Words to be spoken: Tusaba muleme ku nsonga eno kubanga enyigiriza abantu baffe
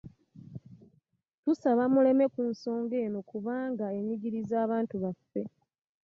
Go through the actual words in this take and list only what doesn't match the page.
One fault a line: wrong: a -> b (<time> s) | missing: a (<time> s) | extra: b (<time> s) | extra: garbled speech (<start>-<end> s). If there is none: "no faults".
no faults